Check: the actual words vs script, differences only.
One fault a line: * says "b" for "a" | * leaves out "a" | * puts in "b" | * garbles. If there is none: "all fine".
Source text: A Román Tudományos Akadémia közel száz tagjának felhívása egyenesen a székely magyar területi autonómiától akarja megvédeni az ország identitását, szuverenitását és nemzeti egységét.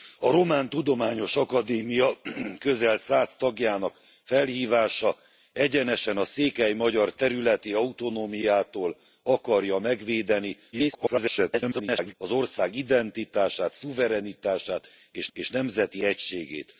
* garbles
* puts in "és"